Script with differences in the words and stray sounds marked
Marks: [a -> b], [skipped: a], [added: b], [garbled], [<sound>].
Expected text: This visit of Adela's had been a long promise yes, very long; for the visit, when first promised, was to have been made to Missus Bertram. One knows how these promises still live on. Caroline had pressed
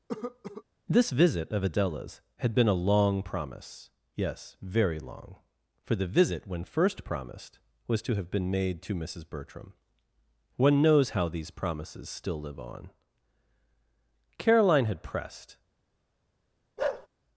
[cough] This visit of Adela's had been a long promise yes, very long; for the visit, when first promised, was to have been made to Missus Bertram. One knows how these promises still live on. Caroline had pressed [bark]